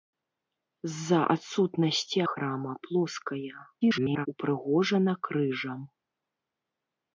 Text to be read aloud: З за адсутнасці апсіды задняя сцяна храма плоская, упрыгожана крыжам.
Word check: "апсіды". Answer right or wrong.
wrong